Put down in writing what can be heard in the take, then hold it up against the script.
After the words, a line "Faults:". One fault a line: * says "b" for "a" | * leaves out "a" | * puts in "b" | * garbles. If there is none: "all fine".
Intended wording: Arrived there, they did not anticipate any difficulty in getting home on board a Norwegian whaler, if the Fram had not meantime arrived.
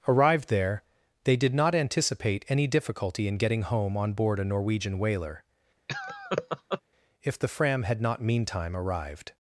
Arrived there, they did not anticipate any difficulty in getting home on board a Norwegian whaler, if the Fram had not meantime arrived.
Faults:
all fine